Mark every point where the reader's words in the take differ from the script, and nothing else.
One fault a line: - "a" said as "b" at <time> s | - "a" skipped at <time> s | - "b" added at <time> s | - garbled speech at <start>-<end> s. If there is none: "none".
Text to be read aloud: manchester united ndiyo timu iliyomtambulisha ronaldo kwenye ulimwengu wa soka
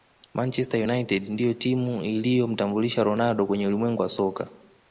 none